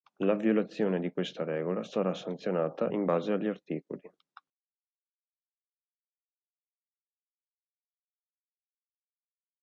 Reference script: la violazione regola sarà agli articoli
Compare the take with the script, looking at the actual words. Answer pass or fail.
fail